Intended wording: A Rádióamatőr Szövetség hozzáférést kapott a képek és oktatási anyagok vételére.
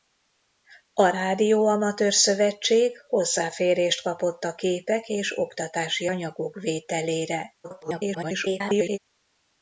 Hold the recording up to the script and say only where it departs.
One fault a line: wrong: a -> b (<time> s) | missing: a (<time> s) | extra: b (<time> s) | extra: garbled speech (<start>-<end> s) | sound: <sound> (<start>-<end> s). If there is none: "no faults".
extra: garbled speech (7.6-9.0 s)